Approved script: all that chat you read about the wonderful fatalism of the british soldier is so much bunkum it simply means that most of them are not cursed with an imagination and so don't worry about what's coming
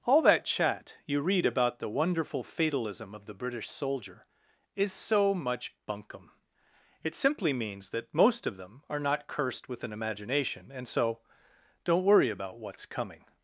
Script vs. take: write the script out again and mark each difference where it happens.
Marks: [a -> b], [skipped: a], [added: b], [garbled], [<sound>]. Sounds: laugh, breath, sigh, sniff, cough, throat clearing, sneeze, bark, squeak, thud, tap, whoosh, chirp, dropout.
all that chat you read about the wonderful fatalism of the british soldier is so much bunkum it simply means that most of them are not cursed with an imagination and so don't worry about what's coming